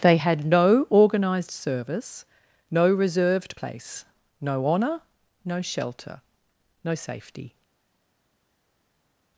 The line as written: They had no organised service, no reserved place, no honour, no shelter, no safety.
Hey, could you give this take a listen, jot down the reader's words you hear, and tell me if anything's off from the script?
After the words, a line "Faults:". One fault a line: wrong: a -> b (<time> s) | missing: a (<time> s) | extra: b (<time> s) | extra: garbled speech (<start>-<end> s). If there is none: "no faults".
They had no organised service, no reserved place, no honour, no shelter, no safety.
Faults:
no faults